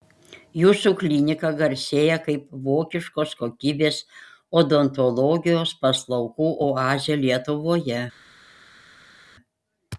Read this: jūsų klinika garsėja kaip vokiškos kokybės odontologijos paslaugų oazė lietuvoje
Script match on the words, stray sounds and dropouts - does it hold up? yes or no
yes